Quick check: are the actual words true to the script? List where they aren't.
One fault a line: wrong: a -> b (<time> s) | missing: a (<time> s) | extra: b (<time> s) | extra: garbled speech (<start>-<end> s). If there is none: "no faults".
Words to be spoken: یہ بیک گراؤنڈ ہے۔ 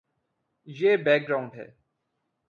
no faults